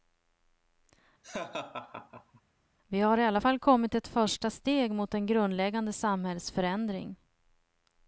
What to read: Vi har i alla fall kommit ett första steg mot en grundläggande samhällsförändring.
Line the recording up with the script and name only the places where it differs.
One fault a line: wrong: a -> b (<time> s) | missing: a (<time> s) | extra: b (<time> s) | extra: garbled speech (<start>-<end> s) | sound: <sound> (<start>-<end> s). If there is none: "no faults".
sound: laugh (1.2-2.4 s)